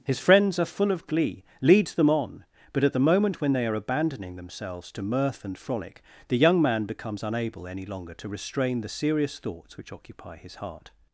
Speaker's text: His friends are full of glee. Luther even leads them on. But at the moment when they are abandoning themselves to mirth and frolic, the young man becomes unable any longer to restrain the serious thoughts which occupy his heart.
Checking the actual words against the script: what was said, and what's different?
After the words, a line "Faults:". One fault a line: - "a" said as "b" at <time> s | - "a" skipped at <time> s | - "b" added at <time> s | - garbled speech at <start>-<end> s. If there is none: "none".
His friends are full of glee. leads them on. But at the moment when they are abandoning themselves to mirth and frolic, the young man becomes unable any longer to restrain the serious thoughts which occupy his heart.
Faults:
- "Luther even" skipped at 1.4 s